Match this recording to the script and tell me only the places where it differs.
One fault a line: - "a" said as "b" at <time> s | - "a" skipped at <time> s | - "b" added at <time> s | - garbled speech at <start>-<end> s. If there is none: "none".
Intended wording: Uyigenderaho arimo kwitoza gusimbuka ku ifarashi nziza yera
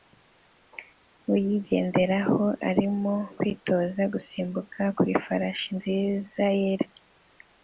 none